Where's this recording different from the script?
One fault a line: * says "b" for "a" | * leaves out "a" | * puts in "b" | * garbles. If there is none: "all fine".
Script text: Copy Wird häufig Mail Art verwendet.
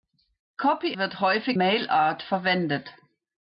all fine